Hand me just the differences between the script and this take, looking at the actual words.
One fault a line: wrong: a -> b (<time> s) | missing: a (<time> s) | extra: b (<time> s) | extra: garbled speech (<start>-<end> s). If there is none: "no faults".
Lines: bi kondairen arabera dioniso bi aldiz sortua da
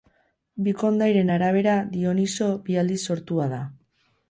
no faults